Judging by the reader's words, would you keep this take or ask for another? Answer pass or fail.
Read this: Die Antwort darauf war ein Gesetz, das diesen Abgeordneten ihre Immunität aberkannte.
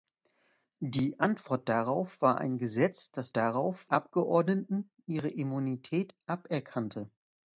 fail